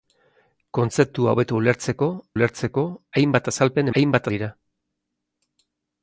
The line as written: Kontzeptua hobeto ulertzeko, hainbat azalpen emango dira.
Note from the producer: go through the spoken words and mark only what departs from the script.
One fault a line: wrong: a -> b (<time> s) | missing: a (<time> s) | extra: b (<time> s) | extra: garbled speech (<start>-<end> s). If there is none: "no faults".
extra: ulertzeko (2.3 s)
wrong: emango -> hainbat (4.0 s)